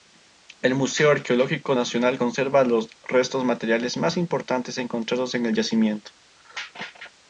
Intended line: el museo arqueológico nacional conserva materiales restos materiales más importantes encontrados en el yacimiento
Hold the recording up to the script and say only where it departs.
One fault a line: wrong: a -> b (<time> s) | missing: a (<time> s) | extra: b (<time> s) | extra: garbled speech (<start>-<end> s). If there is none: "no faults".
wrong: materiales -> los (2.6 s)